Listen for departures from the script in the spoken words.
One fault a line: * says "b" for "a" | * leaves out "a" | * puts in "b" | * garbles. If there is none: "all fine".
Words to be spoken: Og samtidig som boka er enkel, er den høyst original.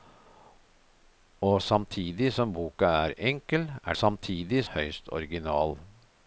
* says "samtidig" for "den"